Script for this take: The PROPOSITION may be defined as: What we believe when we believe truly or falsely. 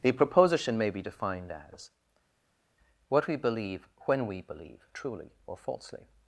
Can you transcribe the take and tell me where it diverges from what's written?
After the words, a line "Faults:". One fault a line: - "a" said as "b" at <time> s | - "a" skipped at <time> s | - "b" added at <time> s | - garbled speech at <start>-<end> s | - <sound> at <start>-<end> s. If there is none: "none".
The PROPOSITION may be defined as: What we believe when we believe truly or falsely.
Faults:
none